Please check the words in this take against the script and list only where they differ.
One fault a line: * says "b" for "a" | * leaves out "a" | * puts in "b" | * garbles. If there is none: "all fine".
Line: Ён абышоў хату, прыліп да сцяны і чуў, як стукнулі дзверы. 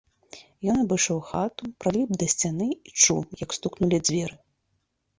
all fine